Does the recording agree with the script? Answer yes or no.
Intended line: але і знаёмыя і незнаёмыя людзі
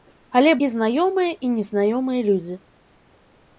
yes